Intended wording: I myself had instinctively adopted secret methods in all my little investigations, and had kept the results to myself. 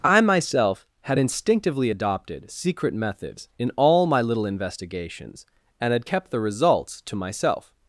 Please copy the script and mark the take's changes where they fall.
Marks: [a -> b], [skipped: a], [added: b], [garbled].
I myself had instinctively adopted secret methods in all my little investigations, and had kept the results to myself.